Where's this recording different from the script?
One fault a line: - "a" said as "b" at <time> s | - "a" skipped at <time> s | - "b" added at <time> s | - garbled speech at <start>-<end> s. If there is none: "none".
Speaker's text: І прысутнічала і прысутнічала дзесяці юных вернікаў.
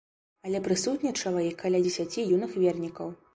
- "І" said as "Але" at 0.5 s
- "прысутнічала" said as "каля" at 1.6 s